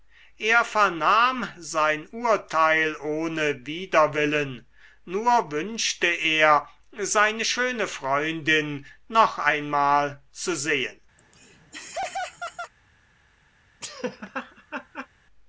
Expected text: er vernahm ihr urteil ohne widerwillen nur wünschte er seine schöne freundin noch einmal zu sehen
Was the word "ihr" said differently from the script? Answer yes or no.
yes